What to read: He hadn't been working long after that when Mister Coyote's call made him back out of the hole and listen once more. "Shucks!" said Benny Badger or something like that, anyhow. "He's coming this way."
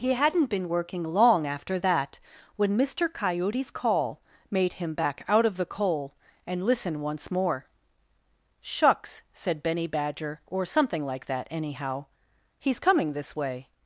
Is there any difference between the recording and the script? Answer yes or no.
yes